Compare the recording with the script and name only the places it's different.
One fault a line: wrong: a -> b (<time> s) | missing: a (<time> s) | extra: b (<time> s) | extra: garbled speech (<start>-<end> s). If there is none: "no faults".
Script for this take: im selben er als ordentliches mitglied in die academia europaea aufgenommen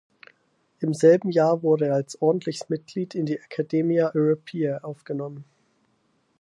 extra: jahr wurde (1.3 s)